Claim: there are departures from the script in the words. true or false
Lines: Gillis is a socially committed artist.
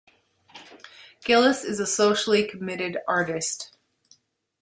false